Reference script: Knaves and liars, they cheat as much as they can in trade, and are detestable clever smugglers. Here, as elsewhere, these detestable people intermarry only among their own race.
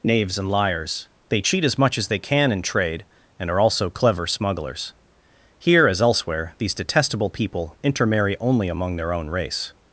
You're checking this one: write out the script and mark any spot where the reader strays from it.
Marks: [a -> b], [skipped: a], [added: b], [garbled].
Knaves and liars, they cheat as much as they can in trade, and are [detestable -> also] clever smugglers. Here, as elsewhere, these detestable people intermarry only among their own race.